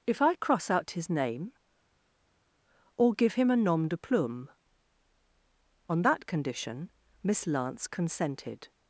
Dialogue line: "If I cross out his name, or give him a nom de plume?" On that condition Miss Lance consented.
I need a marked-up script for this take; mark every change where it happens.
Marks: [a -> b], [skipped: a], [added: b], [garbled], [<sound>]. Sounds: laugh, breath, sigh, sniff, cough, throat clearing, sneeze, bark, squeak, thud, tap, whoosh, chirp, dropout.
"If I cross out his name, or give him a nom de plume?" On that condition Miss Lance consented.